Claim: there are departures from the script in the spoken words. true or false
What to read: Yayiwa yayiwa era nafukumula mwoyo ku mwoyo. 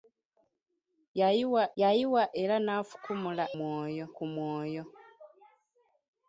false